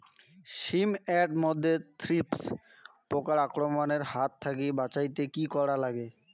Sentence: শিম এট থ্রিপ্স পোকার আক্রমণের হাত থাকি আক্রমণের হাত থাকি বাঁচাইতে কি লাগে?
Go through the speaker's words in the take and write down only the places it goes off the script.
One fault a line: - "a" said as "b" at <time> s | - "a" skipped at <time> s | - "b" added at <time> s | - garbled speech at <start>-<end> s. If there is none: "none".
- "মধ্যে" added at 1.4 s
- "আক্রমণের হাত থাকি" skipped at 4.7 s
- "করা" added at 5.5 s